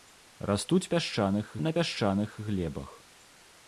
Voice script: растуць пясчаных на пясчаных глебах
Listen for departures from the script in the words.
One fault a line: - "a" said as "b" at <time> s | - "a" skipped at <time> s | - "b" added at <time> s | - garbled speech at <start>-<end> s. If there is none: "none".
none